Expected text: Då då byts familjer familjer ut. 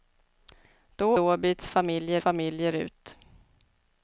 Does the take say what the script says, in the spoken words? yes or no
yes